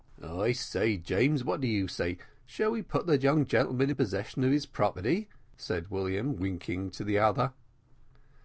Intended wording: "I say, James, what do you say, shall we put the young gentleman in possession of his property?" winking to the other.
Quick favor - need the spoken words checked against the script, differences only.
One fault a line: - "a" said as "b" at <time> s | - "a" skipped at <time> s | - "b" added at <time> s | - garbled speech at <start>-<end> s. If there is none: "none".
- "said William" added at 5.6 s